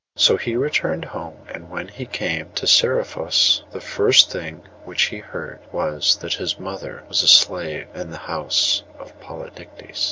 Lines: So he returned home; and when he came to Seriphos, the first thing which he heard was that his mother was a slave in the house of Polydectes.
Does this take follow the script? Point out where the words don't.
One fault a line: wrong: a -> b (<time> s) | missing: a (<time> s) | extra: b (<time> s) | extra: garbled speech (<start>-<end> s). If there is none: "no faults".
no faults